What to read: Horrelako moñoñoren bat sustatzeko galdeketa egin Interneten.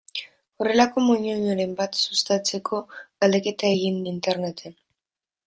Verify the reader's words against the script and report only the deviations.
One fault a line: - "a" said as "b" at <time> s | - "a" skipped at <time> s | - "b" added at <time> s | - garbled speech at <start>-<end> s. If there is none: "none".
none